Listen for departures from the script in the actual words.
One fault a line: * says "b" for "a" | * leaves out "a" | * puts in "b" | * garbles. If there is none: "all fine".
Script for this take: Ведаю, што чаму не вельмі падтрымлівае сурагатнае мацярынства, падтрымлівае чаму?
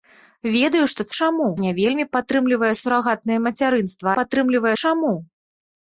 all fine